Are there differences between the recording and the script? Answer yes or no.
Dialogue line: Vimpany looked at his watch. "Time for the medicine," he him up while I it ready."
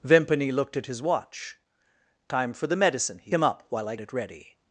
no